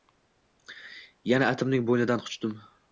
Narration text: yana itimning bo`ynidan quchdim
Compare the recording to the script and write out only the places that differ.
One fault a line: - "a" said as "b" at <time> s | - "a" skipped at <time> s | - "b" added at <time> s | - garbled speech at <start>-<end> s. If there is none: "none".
none